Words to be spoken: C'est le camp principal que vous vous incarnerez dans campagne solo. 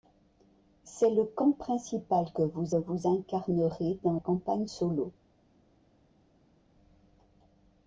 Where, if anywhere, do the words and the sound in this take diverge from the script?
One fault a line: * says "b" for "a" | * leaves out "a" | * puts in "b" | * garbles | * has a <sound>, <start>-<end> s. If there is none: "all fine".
all fine